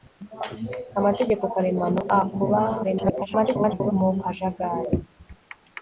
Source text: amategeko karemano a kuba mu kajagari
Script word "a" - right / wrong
right